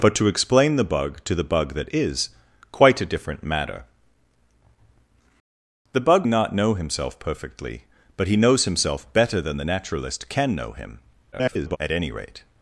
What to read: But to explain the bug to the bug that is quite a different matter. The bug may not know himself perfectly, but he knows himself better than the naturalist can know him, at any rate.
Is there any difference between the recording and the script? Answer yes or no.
yes